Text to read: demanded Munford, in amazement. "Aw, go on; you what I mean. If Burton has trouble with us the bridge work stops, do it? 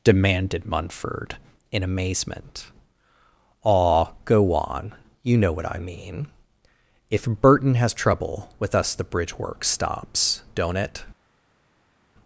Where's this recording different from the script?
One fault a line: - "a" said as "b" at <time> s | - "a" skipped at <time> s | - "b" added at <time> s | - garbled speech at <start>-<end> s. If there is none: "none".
- "know" added at 5.4 s
- "do" said as "don't" at 10.6 s